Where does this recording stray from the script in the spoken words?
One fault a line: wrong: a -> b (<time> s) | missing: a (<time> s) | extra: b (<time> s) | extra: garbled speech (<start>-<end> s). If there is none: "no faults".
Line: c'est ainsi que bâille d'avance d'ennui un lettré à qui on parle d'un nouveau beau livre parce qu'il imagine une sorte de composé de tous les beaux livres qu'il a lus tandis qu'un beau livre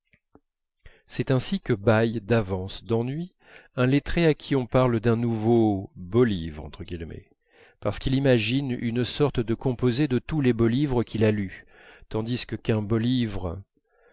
no faults